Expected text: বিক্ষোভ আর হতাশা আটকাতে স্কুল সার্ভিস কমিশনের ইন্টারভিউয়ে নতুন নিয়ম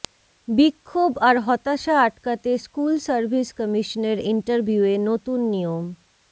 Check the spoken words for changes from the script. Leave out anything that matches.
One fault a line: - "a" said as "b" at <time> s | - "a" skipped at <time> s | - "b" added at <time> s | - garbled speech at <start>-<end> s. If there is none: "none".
none